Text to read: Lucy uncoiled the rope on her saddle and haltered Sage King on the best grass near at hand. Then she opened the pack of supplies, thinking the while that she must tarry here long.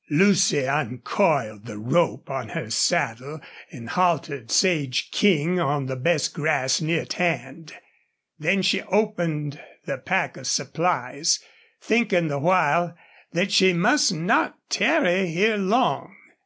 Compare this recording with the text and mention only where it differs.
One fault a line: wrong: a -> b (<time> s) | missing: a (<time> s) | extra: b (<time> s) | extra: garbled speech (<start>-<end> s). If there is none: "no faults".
extra: not (14.1 s)